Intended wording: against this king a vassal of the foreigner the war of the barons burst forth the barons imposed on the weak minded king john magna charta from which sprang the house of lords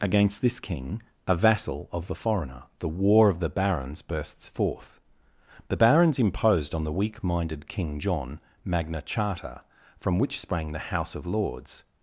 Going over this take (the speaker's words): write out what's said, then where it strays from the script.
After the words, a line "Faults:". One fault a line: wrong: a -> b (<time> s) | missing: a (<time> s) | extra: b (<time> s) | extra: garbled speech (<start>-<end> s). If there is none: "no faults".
against this king a vassal of the foreigner the war of the barons bursts forth the barons imposed on the weak minded king john magna charta from which sprang the house of lords
Faults:
wrong: burst -> bursts (4.0 s)